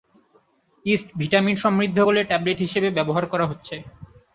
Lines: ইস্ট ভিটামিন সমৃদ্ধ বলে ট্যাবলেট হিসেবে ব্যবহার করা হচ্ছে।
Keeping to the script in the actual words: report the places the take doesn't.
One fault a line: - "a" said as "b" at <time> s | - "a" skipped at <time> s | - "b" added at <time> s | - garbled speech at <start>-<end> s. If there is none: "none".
none